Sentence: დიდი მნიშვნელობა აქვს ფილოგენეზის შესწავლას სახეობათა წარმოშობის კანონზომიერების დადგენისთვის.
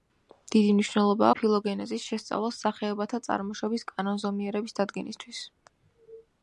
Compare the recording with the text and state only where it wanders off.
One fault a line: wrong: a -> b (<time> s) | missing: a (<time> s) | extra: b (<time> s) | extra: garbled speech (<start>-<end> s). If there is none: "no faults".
missing: აქვს (1.3 s)